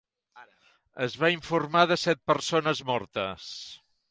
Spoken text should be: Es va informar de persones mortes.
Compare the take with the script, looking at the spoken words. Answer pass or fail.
fail